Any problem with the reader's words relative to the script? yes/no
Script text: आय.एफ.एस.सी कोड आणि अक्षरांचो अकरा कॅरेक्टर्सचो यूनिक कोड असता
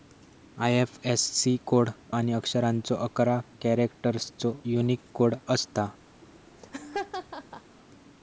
no